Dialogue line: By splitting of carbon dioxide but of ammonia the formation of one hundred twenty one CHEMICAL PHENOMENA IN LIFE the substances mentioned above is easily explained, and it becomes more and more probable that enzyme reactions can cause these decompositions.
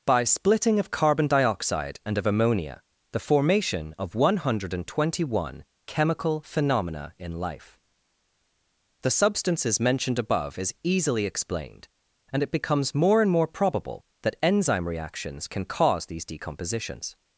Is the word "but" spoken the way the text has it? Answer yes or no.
no